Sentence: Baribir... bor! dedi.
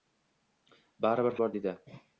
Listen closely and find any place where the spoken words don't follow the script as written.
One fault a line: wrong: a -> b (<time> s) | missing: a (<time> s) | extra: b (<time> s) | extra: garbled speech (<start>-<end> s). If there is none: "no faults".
no faults